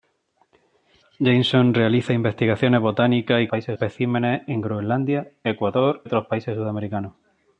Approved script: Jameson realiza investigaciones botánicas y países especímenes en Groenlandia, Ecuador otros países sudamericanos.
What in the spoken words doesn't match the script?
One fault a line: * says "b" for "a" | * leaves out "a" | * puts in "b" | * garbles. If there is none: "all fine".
all fine